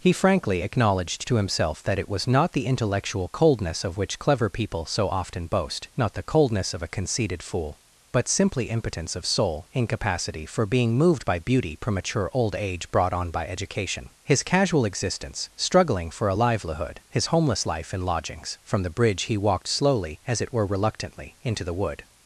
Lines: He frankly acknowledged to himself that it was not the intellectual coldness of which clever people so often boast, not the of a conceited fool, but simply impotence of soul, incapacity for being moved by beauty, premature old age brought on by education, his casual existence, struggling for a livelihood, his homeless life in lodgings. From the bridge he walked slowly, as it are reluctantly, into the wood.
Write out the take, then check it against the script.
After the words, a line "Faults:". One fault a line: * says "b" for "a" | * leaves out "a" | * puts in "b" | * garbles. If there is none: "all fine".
He frankly acknowledged to himself that it was not the intellectual coldness of which clever people so often boast, not the coldness of a conceited fool, but simply impotence of soul, incapacity for being moved by beauty, premature old age brought on by education, his casual existence, struggling for a livelihood, his homeless life in lodgings. From the bridge he walked slowly, as it were reluctantly, into the wood.
Faults:
* puts in "coldness"
* says "were" for "are"